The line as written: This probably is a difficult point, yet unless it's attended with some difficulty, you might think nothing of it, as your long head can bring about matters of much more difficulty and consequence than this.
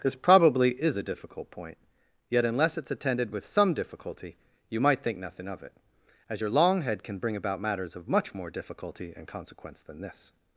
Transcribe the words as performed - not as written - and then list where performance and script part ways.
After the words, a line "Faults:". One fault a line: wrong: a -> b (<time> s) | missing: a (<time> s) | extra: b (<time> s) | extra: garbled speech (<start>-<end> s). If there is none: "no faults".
This probably is a difficult point, yet unless it's attended with some difficulty, you might think nothing of it, as your long head can bring about matters of much more difficulty and consequence than this.
Faults:
no faults